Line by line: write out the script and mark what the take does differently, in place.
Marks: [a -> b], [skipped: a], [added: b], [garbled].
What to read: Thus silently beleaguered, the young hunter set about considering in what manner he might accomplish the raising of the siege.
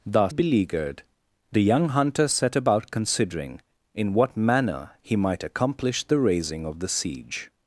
Thus [skipped: silently] beleaguered, the young hunter set about considering in what manner he might accomplish the raising of the siege.